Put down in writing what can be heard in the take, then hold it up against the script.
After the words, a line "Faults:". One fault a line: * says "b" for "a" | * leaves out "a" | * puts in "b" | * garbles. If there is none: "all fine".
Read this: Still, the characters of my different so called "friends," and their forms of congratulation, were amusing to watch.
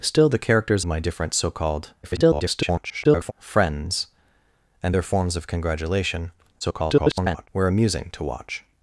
Still, the characters my different so called [garbled] "friends," and their forms of congratulation, [garbled] were amusing to watch.
Faults:
* leaves out "of"
* garbles
* garbles